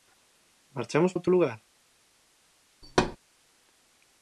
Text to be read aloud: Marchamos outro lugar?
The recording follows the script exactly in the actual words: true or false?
true